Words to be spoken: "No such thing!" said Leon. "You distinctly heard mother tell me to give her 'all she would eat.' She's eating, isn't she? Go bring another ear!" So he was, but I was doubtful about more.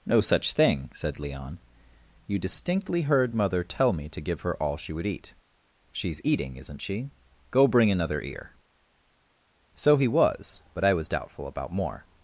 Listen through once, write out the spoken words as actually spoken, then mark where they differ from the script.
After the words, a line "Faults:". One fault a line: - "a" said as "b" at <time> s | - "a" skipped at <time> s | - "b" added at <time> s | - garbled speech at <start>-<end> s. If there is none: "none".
"No such thing!" said Leon. "You distinctly heard mother tell me to give her 'all she would eat.' She's eating, isn't she? Go bring another ear!" So he was, but I was doubtful about more.
Faults:
none